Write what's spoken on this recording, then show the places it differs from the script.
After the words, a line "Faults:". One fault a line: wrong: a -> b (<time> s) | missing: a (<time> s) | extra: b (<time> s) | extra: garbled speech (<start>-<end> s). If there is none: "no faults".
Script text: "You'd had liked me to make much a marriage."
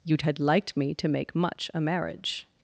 "You'd had liked me to make much a marriage."
Faults:
no faults